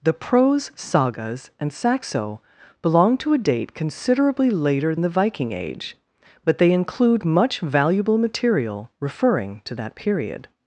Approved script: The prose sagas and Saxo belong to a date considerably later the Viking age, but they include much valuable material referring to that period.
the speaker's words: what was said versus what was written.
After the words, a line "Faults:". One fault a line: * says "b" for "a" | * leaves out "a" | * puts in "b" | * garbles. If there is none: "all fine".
The prose sagas and Saxo belong to a date considerably later the Viking age, but they include much valuable material referring to that period.
Faults:
all fine